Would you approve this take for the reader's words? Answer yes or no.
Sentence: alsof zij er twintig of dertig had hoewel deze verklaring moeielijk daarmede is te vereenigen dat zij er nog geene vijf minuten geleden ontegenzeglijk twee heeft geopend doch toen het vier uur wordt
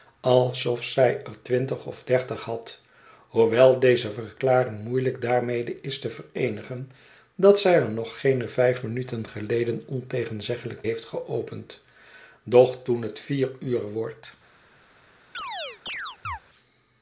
no